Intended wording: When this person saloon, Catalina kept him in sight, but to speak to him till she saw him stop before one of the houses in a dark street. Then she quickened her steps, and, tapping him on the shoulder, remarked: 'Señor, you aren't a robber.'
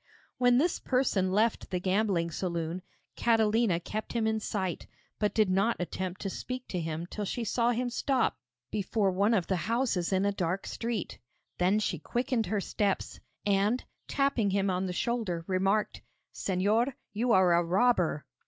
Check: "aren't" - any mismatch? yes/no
yes